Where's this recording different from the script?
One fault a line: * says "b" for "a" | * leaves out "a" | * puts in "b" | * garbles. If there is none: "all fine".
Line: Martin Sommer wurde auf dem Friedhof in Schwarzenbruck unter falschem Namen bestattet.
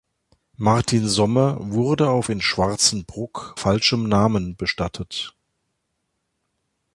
* leaves out "dem Friedhof"
* leaves out "unter"